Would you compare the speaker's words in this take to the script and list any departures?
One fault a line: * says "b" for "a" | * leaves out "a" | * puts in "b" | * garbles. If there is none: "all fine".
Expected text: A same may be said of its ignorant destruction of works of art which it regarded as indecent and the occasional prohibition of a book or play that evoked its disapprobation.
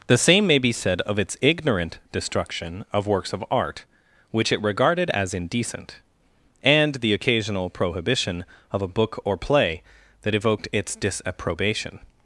* says "The" for "A"